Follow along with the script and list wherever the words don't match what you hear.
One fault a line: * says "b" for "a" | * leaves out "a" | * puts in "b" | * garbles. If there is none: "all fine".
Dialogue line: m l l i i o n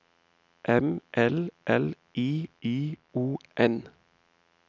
all fine